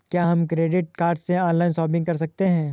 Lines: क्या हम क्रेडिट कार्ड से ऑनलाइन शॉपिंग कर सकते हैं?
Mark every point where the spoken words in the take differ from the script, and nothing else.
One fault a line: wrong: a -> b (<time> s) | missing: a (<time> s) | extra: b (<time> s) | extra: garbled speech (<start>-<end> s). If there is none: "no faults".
no faults